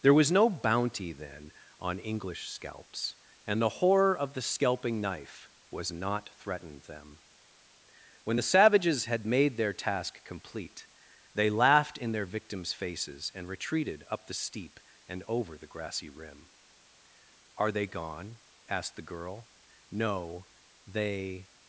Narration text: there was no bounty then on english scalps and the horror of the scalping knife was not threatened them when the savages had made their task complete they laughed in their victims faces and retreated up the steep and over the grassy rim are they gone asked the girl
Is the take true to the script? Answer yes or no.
no